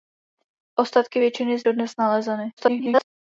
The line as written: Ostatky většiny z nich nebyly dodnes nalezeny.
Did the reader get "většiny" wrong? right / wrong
right